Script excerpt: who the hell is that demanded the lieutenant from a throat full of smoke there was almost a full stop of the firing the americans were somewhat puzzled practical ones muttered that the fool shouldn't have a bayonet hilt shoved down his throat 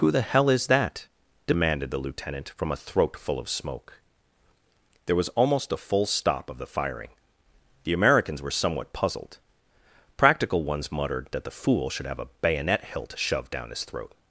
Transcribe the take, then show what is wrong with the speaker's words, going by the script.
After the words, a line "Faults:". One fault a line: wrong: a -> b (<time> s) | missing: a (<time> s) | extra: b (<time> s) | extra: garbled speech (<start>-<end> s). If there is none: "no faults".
who the hell is that demanded the lieutenant from a throat full of smoke there was almost a full stop of the firing the americans were somewhat puzzled practical ones muttered that the fool should have a bayonet hilt shoved down his throat
Faults:
wrong: shouldn't -> should (11.9 s)